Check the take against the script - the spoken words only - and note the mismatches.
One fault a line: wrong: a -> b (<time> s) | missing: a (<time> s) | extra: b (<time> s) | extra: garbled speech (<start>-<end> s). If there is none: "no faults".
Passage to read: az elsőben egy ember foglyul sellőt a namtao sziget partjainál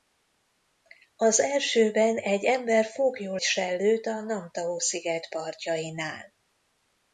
no faults